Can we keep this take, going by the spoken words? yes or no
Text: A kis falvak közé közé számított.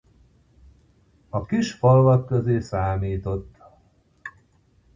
no